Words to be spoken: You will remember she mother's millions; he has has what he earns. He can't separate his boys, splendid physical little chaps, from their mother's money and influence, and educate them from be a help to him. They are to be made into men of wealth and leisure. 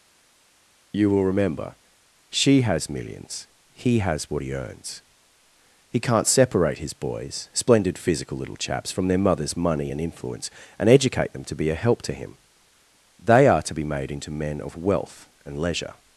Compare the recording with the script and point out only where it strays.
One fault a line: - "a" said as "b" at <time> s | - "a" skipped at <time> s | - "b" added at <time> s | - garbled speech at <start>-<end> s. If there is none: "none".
- "mother's" said as "has" at 2.6 s
- "has" skipped at 4.3 s
- "from" said as "to" at 11.4 s